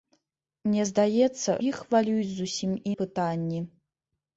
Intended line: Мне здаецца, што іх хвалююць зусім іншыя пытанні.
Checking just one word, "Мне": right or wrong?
right